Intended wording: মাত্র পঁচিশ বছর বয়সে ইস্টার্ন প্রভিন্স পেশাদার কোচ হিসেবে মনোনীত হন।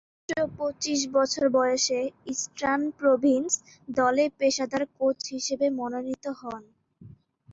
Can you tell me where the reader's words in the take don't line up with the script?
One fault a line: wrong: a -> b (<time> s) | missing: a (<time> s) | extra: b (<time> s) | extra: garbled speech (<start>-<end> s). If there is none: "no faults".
extra: দলে (3.9 s)